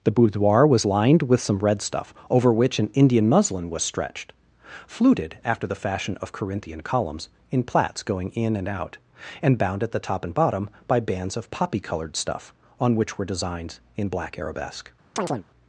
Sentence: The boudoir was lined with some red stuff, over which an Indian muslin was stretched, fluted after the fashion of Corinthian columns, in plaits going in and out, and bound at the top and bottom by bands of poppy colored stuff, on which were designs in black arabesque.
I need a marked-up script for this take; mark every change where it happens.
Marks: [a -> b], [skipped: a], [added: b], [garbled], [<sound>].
The boudoir was lined with some red stuff, over which an Indian muslin was stretched, fluted after the fashion of Corinthian columns, in plaits going in and out, and bound at the top and bottom by bands of poppy colored stuff, on which were designs in black arabesque. [chirp]